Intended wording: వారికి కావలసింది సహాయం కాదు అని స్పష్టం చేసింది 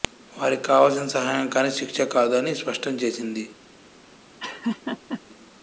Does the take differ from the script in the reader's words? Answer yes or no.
yes